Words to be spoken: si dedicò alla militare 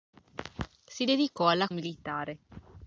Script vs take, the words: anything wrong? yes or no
no